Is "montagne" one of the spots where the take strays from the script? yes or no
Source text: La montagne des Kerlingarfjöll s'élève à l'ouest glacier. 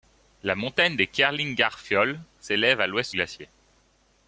no